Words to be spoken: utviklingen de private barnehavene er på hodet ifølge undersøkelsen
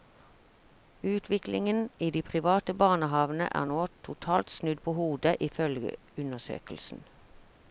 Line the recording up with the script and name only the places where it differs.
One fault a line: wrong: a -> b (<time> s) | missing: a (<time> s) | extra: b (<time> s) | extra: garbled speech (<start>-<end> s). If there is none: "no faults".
extra: i (2.0 s)
extra: nå totalt snudd (3.7 s)